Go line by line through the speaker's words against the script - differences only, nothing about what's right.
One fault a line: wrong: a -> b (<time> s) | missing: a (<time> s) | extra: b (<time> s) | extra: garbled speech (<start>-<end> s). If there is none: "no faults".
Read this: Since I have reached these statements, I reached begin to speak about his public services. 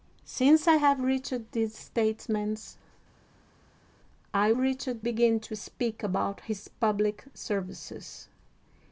no faults